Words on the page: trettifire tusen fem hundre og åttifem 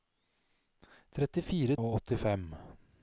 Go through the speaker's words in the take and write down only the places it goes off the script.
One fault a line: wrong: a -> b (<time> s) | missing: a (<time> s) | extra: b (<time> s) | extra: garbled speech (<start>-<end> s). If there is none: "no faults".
missing: tusen fem hundre (1.8 s)